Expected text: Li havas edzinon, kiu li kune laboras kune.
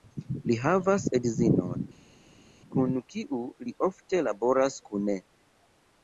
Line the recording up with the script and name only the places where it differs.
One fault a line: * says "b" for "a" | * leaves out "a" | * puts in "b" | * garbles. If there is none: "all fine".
* puts in "kun"
* says "ofte" for "kune"